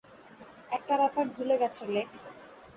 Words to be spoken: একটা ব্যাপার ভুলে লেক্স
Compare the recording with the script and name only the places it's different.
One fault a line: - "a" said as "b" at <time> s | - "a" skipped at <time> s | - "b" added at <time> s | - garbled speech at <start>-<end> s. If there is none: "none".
- "গেছো" added at 1.6 s